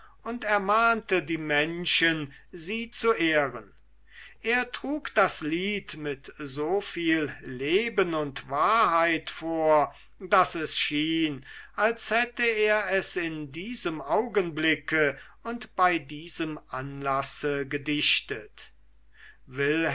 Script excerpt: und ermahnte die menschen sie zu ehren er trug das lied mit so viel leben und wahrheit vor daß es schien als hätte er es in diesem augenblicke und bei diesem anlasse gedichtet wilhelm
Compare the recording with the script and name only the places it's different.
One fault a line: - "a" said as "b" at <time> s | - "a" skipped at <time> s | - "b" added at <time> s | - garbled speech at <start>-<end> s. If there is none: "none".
none